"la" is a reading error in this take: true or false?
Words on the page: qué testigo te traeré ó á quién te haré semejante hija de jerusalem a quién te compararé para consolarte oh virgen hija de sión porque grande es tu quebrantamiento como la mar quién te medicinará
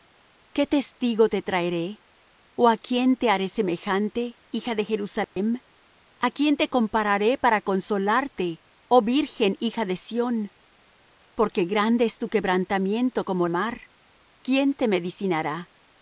true